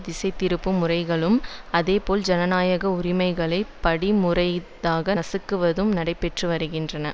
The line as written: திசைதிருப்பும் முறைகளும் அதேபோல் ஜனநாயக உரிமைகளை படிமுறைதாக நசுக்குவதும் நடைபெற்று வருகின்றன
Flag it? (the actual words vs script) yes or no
no